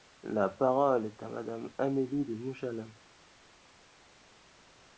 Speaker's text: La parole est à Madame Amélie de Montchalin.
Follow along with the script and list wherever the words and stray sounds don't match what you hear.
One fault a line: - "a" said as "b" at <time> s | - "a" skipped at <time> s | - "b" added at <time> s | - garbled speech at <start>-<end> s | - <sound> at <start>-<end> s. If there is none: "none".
none